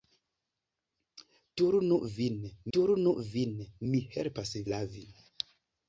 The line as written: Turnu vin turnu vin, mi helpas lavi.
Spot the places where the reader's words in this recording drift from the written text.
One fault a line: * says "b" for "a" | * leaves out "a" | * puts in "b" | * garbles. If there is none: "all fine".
all fine